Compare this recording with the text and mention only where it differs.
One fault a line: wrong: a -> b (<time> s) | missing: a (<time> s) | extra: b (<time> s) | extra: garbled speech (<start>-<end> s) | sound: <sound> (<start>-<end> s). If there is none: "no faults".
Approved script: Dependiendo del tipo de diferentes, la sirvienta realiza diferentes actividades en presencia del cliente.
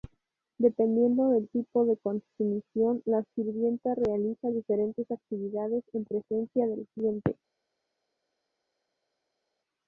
wrong: diferentes -> consumición (1.9 s)